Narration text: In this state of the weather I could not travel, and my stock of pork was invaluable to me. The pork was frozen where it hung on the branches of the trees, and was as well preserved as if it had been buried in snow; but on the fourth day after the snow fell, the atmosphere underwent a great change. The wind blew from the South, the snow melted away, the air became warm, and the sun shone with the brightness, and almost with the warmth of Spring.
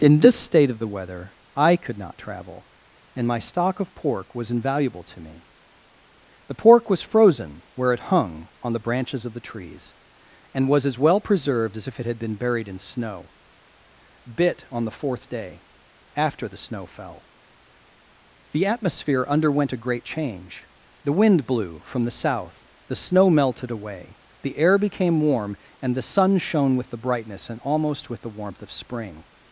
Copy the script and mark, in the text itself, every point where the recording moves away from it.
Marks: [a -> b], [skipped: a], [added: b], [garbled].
In this state of the weather I could not travel, and my stock of pork was invaluable to me. The pork was frozen where it hung on the branches of the trees, and was as well preserved as if it had been buried in snow; [but -> bit] on the fourth day after the snow fell, the atmosphere underwent a great change. The wind blew from the South, the snow melted away, the air became warm, and the sun shone with the brightness, and almost with the warmth of Spring.